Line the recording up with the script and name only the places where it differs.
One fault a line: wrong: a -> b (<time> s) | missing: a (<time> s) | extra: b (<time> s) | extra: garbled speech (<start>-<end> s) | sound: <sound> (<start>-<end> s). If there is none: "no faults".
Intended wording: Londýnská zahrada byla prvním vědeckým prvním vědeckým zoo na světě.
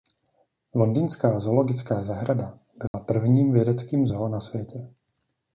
extra: zoologická (1.4 s)
sound: dropout (2.9-2.9 s)
missing: prvním vědeckým (4.1 s)